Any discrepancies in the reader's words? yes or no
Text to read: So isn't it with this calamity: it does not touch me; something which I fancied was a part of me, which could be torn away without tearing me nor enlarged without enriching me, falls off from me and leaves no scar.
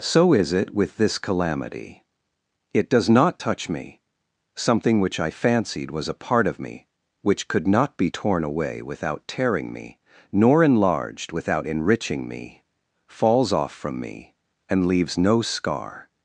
yes